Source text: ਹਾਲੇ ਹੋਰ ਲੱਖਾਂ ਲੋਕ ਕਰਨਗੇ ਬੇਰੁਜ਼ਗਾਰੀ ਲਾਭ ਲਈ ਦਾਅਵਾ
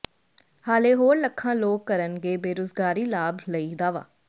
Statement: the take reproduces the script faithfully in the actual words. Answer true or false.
true